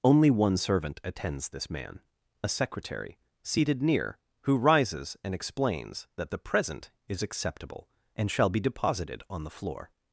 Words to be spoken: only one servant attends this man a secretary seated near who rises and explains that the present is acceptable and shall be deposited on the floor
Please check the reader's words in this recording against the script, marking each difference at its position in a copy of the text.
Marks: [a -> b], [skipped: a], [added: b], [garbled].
only one servant attends this man a secretary seated near who rises and explains that the present is acceptable and shall be deposited on the floor